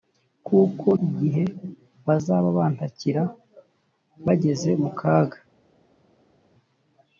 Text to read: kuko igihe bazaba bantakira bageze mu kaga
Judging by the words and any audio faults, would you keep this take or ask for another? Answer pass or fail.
pass